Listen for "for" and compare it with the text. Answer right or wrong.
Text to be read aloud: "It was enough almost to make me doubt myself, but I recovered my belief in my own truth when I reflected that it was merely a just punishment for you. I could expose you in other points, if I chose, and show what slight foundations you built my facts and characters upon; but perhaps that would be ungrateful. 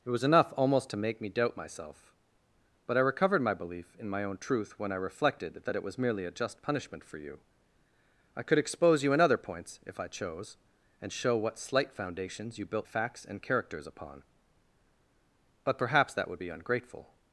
right